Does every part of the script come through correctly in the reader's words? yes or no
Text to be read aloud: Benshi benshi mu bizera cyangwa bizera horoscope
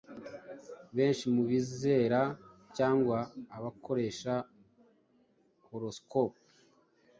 no